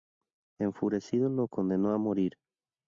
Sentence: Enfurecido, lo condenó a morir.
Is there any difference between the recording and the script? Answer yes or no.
no